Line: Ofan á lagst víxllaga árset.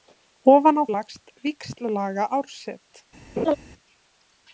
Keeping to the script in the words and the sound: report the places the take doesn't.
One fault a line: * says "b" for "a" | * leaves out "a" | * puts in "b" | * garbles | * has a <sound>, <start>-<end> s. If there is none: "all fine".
* has a laugh, 3.4-3.6 s